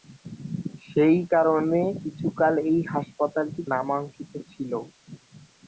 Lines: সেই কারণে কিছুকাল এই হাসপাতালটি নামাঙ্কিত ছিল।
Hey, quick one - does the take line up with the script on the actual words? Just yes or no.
yes